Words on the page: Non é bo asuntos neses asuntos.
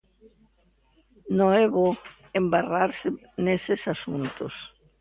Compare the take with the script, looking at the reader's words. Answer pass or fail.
fail